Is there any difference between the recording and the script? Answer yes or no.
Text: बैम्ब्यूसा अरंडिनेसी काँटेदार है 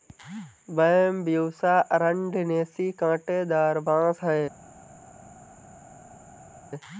yes